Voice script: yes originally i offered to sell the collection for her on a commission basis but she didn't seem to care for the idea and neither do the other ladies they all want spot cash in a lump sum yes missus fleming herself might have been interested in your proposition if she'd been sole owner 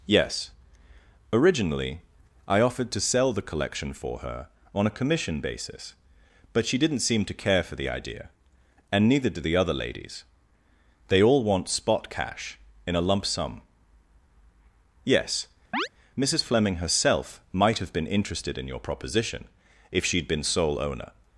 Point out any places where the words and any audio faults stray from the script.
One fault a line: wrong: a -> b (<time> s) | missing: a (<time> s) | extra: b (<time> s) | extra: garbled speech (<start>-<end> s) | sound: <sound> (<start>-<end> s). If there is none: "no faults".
sound: chirp (15.7-15.9 s)